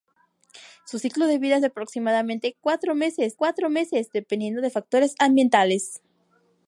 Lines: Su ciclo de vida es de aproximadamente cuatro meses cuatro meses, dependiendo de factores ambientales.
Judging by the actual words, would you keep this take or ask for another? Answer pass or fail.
pass